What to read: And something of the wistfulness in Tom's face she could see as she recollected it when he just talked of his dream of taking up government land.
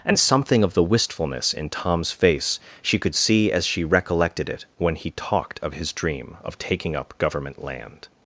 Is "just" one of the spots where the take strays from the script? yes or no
yes